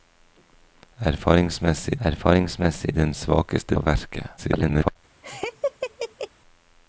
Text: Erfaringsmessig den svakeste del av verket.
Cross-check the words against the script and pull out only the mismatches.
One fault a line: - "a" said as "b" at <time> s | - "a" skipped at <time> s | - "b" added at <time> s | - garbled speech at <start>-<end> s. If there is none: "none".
- "erfaringsmessig" added at 2.0 s
- "del" skipped at 3.8 s
- garbled speech at 4.4-5.0 s